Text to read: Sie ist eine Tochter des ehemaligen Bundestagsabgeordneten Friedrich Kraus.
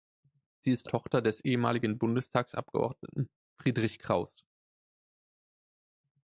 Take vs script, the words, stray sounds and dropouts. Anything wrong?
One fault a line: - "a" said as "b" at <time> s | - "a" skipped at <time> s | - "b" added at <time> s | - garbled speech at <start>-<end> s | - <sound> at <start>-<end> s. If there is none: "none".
- "eine" skipped at 0.9 s